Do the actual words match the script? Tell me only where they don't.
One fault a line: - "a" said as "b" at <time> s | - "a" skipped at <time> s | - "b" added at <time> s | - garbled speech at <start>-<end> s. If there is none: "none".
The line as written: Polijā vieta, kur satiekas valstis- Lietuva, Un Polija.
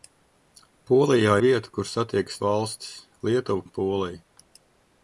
none